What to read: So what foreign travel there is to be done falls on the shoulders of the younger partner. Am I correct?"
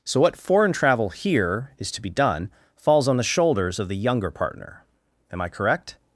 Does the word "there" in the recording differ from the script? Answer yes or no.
yes